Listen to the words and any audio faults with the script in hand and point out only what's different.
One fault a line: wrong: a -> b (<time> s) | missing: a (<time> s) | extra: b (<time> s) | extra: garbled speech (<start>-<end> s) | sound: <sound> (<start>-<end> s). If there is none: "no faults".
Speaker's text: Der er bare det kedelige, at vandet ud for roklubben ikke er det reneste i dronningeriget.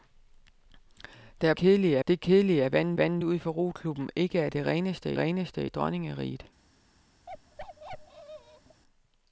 wrong: bare -> kedelige (1.5 s)
extra: vandet (3.0 s)
extra: reneste (5.2 s)
sound: bark (7.3-8.8 s)